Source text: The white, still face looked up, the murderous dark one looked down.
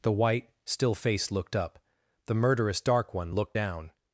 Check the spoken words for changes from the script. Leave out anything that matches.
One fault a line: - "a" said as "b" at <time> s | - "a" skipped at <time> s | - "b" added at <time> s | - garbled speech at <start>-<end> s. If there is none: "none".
none